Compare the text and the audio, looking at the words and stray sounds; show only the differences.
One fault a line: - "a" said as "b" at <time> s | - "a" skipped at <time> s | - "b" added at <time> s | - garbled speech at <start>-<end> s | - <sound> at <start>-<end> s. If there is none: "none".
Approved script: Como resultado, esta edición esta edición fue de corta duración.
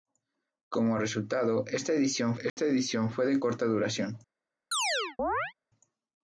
- dropout at 2.5-2.6 s
- chirp at 4.7-5.5 s